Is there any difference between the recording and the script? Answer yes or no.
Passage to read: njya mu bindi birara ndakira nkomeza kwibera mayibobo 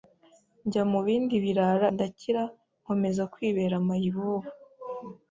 no